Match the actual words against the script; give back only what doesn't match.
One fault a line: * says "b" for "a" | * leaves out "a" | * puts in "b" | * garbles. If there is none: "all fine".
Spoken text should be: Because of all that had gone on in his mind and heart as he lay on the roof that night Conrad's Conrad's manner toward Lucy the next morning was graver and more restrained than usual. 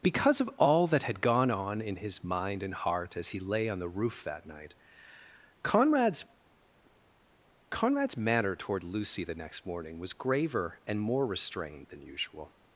all fine